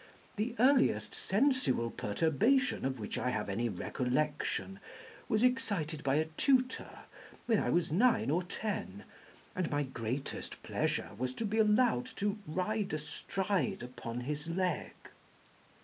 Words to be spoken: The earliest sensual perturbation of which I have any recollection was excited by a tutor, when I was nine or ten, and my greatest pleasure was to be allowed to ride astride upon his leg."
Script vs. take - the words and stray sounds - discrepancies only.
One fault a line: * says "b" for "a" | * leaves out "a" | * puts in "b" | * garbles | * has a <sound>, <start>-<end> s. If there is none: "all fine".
all fine